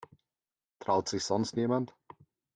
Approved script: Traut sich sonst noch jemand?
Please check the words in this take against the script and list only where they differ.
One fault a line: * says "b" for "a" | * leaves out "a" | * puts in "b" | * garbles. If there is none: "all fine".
* leaves out "noch"